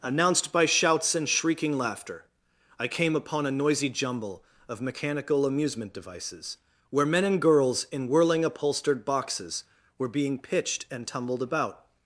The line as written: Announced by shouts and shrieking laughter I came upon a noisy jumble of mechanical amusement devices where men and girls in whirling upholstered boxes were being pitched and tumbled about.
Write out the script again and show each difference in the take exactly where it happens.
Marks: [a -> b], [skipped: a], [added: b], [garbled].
Announced by shouts and shrieking laughter I came upon a noisy jumble of mechanical amusement devices where men and girls in whirling upholstered boxes were being pitched and tumbled about.